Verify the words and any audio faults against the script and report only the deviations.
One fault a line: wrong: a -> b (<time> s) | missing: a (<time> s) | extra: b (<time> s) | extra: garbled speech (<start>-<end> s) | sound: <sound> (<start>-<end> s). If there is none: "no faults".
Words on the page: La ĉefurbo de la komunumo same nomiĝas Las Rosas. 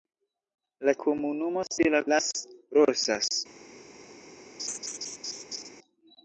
wrong: ĉefurbo -> komunumo (1.0 s)
missing: komunumo same nomiĝas (2.0 s)
sound: laugh (4.6-5.7 s)